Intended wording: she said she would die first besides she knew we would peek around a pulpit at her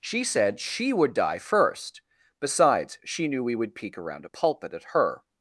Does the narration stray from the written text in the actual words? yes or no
no